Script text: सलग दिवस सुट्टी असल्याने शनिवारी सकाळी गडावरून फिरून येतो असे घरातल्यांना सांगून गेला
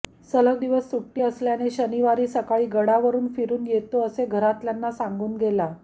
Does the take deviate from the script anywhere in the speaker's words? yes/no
no